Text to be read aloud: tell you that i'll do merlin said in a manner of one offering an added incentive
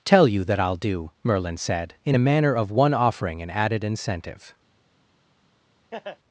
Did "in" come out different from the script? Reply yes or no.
no